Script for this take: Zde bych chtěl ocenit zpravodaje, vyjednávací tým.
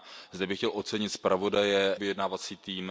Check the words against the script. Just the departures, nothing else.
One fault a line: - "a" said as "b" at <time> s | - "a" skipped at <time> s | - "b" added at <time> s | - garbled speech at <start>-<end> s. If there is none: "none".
none